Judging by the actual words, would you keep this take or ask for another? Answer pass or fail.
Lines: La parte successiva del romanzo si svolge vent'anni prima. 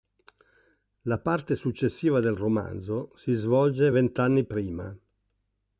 pass